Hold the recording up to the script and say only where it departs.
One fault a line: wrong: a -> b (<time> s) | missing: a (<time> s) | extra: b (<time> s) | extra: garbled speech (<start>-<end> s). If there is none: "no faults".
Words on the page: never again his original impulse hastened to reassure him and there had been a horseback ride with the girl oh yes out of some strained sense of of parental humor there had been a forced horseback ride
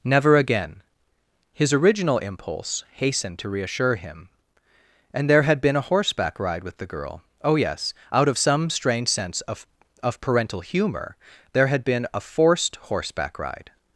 wrong: strained -> strange (8.7 s)